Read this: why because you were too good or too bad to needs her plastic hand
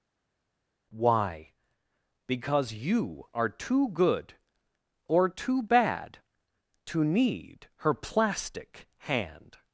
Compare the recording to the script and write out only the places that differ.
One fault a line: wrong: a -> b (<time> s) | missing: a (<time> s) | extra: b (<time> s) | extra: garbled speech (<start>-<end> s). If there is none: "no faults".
wrong: were -> are (3.3 s)
wrong: needs -> need (7.0 s)